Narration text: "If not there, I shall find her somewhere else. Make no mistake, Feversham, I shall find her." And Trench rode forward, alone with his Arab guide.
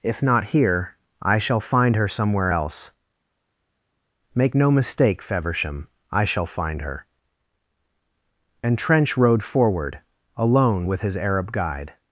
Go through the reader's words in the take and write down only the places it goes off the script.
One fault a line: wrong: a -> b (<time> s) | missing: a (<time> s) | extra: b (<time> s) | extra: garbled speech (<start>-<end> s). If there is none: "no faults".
wrong: there -> here (0.5 s)